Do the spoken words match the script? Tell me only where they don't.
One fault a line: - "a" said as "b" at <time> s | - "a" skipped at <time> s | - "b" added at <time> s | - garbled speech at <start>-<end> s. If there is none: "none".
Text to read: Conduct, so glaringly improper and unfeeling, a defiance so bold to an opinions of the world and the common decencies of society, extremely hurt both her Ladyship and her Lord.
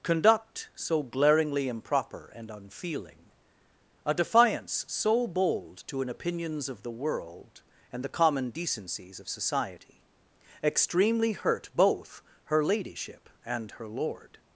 none